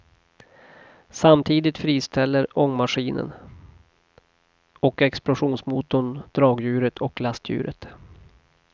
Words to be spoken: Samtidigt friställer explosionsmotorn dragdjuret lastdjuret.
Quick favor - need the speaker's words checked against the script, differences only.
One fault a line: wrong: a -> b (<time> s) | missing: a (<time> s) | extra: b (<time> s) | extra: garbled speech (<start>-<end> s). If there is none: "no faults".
extra: ångmaskinen och (2.6 s)
extra: och (7.0 s)